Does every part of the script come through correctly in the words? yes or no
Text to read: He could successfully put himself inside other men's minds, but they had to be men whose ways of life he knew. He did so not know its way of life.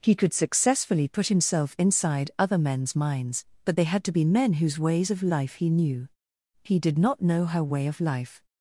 no